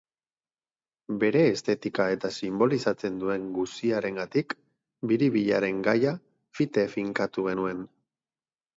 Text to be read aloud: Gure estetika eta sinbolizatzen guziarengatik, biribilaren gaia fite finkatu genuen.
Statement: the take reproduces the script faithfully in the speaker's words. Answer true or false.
false